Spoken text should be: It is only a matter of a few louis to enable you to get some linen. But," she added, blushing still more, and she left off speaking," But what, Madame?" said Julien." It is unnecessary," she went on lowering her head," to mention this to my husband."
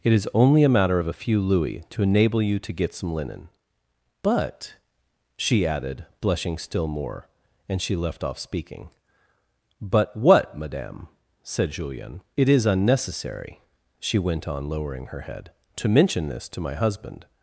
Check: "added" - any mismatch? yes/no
no